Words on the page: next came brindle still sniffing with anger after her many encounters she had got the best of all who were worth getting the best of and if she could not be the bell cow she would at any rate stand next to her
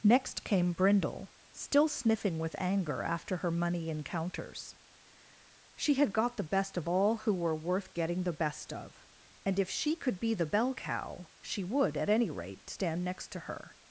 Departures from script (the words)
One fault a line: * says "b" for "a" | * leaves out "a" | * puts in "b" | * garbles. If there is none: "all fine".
* says "money" for "many"
* leaves out "not"